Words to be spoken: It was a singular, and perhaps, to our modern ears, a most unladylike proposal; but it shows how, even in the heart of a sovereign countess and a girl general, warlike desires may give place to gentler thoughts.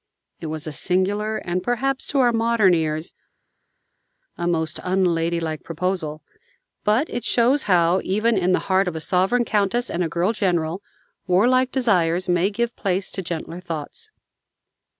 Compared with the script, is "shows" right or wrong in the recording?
right